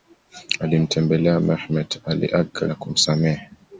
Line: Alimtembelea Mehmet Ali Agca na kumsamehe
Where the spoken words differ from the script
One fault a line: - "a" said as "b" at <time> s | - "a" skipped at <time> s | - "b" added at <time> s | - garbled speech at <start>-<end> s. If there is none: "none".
none